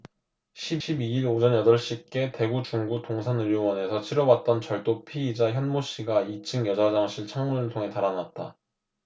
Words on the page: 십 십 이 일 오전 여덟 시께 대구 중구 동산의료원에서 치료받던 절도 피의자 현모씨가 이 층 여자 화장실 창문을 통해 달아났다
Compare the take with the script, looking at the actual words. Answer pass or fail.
pass